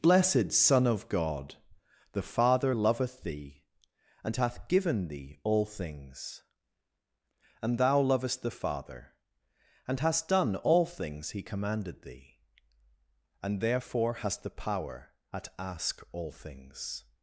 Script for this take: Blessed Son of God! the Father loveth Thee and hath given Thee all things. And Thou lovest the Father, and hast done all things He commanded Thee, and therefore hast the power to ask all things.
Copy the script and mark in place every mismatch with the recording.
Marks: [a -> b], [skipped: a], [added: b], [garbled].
Blessed Son of God! the Father loveth Thee and hath given Thee all things. And Thou lovest the Father, and hast done all things He commanded Thee, and therefore hast the power [to -> at] ask all things.